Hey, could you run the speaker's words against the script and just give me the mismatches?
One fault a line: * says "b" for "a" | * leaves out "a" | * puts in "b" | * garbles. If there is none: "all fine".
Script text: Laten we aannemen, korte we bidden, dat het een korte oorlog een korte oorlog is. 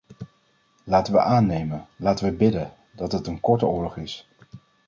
* says "laten" for "korte"
* leaves out "een korte oorlog"